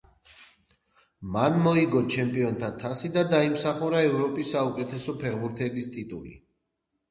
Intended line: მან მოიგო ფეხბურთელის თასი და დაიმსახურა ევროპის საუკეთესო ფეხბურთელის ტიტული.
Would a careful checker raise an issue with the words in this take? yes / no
yes